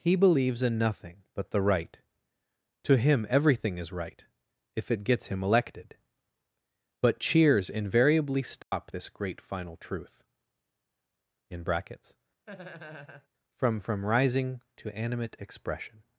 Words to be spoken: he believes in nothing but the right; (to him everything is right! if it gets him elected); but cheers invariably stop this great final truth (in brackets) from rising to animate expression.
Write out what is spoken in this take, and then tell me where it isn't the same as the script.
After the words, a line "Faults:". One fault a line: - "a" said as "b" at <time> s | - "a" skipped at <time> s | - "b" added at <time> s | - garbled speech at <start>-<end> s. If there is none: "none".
he believes in nothing but the right; (to him everything is right! if it gets him elected); but cheers invariably stop this great final truth (in brackets) from from rising to animate expression.
Faults:
- "from" added at 13.8 s